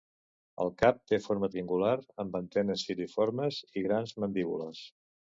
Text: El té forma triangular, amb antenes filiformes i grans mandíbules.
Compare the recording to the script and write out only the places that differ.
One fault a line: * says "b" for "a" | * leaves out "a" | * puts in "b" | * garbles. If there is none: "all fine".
* puts in "cap"